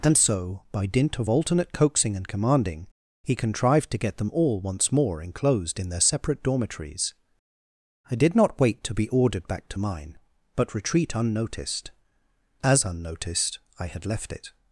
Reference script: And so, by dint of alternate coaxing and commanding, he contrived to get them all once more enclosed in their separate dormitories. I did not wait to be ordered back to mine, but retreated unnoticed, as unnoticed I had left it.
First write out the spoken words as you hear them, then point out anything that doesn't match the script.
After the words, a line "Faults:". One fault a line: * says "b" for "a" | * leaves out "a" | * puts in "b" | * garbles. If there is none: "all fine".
And so, by dint of alternate coaxing and commanding, he contrived to get them all once more enclosed in their separate dormitories. I did not wait to be ordered back to mine, but retreat unnoticed, as unnoticed I had left it.
Faults:
* says "retreat" for "retreated"